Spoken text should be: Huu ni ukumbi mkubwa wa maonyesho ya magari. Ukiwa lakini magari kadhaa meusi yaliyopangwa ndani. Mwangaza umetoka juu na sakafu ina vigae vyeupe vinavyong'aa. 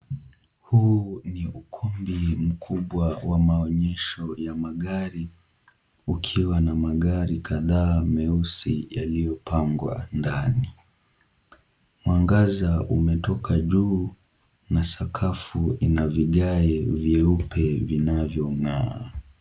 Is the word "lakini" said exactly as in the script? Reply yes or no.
no